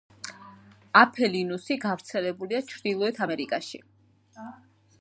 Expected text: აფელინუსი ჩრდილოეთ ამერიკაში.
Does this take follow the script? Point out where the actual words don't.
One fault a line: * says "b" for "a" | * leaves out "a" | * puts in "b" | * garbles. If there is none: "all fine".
* puts in "გავრცელებულია"